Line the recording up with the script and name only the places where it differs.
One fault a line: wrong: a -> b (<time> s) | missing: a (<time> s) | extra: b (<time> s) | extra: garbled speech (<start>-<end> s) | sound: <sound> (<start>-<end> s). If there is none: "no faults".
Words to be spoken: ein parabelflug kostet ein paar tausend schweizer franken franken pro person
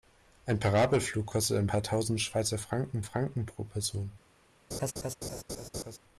sound: laugh (4.7-6.0 s)